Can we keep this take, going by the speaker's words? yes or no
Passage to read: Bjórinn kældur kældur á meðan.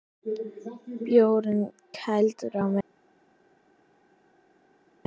no